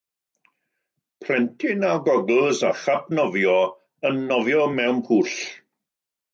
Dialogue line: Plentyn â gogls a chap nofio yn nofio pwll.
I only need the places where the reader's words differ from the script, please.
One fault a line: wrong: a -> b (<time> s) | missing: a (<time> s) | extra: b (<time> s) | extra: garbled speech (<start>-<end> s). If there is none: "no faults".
extra: mewn (4.8 s)